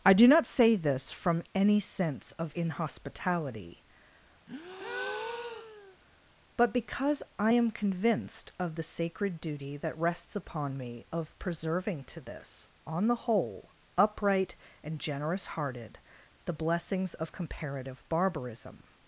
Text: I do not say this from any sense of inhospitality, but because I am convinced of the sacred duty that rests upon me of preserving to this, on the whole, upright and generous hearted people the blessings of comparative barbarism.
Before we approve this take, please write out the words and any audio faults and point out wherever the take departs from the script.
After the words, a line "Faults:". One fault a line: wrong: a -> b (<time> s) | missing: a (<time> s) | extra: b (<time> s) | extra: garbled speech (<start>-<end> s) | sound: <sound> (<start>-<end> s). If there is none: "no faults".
I do not say this from any sense of inhospitality, but because I am convinced of the sacred duty that rests upon me of preserving to this, on the whole, upright and generous hearted the blessings of comparative barbarism.
Faults:
sound: breath (4.5-6.0 s)
missing: people (16.0 s)